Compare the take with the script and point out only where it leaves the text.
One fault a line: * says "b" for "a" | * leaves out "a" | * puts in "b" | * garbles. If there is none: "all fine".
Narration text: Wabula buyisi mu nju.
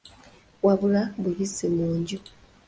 all fine